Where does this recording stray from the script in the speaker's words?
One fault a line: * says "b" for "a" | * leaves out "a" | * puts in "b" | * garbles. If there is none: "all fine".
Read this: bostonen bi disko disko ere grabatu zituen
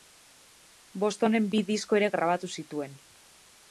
* leaves out "disko"